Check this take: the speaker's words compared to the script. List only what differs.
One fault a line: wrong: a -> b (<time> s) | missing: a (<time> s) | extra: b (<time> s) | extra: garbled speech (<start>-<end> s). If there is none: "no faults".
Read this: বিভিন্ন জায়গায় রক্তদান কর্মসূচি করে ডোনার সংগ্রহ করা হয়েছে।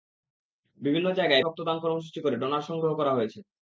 no faults